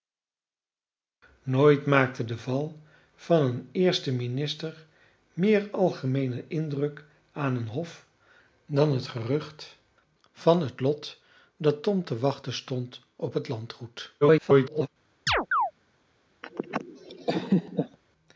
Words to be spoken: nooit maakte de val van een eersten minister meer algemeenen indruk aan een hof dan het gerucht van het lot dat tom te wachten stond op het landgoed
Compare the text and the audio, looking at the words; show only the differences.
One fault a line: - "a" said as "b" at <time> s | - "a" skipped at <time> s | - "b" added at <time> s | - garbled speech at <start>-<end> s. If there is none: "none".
- garbled speech at 14.2-14.9 s